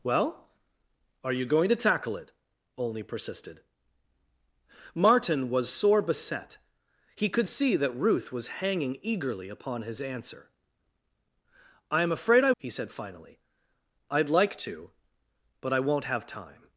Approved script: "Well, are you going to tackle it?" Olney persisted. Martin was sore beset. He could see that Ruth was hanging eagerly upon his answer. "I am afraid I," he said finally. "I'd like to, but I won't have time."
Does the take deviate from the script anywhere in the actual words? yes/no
no